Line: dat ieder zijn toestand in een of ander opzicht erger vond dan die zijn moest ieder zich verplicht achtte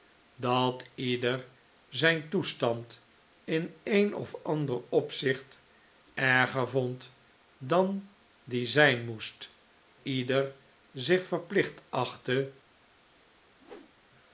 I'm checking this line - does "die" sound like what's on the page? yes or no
yes